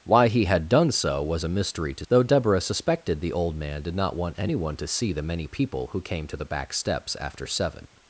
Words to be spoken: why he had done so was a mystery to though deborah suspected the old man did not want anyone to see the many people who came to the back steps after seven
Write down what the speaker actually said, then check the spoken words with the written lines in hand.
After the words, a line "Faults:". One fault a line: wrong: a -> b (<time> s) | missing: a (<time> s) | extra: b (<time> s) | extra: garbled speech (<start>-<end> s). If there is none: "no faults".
why he had done so was a mystery to though deborah suspected the old man did not want anyone to see the many people who came to the back steps after seven
Faults:
no faults